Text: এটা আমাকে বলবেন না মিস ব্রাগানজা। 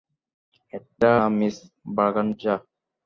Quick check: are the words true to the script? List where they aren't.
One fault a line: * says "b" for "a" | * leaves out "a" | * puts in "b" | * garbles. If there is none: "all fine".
* leaves out "আমাকে বলবেন"